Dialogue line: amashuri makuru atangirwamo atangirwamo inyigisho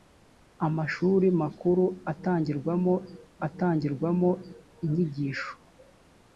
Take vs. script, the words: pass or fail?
pass